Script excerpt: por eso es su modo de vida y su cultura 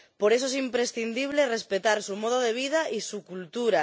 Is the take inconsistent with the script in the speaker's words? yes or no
yes